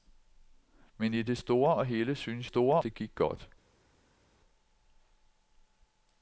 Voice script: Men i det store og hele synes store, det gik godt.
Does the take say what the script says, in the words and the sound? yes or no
yes